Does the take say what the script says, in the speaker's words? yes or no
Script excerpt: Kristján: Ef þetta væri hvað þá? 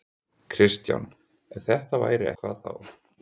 yes